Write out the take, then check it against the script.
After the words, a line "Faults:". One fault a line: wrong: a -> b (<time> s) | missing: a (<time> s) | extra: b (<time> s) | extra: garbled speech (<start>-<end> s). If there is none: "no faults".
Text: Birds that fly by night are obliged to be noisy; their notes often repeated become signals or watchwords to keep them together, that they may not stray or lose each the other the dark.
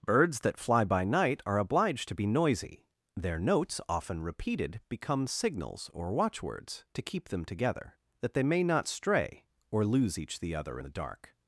Birds that fly by night are obliged to be noisy; their notes often repeated become signals or watchwords to keep them together, that they may not stray or lose each the other the dark.
Faults:
no faults